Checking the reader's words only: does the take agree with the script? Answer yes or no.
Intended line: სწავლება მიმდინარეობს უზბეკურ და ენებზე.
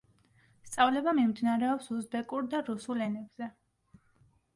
no